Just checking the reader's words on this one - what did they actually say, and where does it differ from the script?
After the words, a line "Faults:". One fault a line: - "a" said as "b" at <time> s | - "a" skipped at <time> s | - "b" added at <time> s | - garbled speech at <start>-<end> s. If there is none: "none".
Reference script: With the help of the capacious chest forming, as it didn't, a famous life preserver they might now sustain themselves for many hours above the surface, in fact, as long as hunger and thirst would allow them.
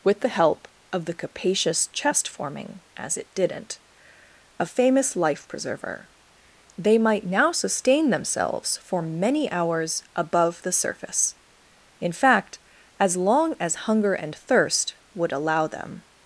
With the help of the capacious chest forming, as it didn't, a famous life preserver they might now sustain themselves for many hours above the surface, in fact, as long as hunger and thirst would allow them.
Faults:
none